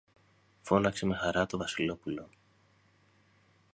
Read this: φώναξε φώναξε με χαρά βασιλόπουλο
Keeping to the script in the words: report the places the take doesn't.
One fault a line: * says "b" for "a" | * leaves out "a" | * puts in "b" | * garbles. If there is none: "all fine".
* leaves out "φώναξε"
* puts in "το"